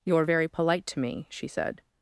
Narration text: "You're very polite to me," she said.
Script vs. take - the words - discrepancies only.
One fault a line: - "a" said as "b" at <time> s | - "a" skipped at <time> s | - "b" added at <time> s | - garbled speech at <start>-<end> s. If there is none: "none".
none